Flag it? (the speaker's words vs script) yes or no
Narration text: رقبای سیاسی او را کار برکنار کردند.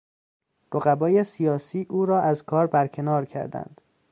yes